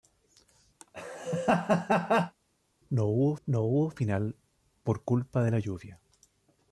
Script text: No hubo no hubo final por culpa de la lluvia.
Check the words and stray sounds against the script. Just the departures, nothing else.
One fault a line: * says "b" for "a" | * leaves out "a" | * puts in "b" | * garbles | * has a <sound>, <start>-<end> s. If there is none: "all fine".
* has a laugh, 0.8-2.3 s